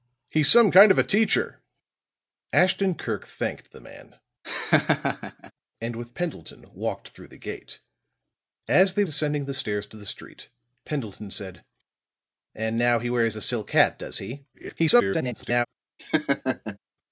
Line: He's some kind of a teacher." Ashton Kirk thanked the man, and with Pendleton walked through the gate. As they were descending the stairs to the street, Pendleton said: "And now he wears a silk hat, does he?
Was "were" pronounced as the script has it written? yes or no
no